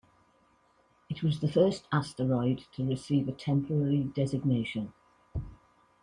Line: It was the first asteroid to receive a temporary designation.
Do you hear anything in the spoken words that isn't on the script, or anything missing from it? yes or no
no